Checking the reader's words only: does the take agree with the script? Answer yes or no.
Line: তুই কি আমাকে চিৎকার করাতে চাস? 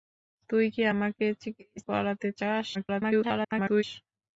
no